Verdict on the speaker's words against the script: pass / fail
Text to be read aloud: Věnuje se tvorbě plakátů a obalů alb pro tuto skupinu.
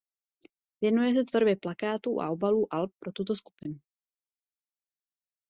pass